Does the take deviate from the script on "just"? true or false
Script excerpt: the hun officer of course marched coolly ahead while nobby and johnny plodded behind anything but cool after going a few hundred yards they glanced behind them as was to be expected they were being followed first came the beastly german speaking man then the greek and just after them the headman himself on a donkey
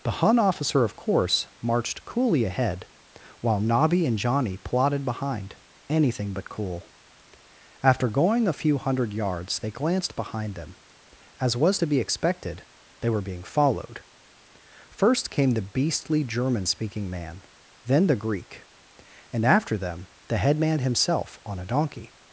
true